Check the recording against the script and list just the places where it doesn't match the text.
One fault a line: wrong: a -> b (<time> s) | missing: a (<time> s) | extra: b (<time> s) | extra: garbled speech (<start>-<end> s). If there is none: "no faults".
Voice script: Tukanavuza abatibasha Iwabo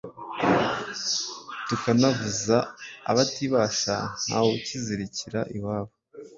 extra: Ntawukizirikira (4.3 s)